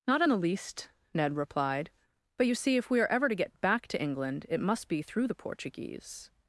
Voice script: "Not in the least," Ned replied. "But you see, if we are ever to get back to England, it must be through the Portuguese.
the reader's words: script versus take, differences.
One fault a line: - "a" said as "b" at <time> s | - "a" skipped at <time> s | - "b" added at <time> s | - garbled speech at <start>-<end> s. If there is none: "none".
none